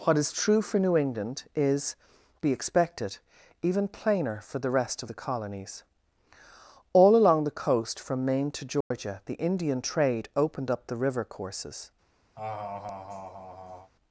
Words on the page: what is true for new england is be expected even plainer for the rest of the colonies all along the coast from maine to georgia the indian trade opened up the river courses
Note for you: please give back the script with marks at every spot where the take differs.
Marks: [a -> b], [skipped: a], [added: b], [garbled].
what is true for new england is be expected even plainer for the rest of the colonies all along the coast from maine to georgia the indian trade opened up the river courses